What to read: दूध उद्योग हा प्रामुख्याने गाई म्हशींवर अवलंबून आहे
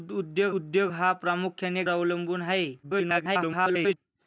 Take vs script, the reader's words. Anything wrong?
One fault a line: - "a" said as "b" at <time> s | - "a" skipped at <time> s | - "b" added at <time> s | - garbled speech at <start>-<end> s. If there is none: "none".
- "उद्योग" added at 0.5 s
- "गाई म्हशींवर" skipped at 1.8 s
- garbled speech at 2.8-4.0 s